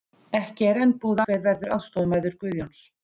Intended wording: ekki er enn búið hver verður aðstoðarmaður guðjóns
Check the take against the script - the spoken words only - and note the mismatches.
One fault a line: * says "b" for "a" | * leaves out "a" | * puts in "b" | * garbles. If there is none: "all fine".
all fine